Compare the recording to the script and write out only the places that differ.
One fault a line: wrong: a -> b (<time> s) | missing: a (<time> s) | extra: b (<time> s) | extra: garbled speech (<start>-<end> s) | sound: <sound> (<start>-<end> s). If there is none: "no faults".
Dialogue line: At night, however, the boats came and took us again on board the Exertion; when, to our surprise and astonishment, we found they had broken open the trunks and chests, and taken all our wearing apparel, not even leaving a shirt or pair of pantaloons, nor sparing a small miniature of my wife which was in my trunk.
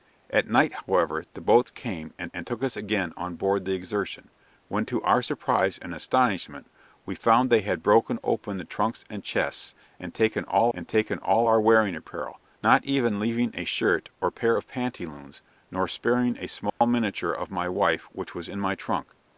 extra: and (2.3 s)
extra: and taken all (10.7 s)
sound: dropout (16.7-16.8 s)